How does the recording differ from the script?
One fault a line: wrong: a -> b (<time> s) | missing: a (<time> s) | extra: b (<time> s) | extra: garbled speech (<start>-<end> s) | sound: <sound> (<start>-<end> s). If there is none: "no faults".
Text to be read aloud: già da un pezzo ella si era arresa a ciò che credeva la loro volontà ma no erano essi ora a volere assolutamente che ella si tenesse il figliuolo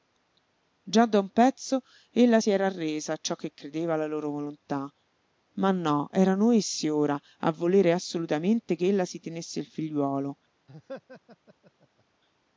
sound: laugh (10.7-12.0 s)